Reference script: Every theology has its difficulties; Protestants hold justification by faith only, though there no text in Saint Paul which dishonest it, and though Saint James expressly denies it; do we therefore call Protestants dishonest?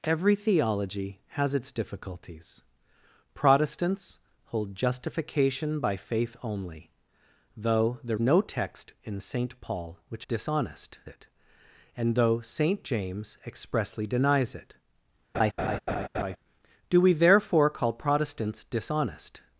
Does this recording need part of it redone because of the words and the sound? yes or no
yes